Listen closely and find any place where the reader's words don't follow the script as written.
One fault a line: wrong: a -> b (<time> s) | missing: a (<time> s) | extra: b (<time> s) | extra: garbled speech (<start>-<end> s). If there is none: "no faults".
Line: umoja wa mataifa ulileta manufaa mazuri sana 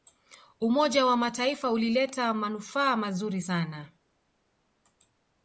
no faults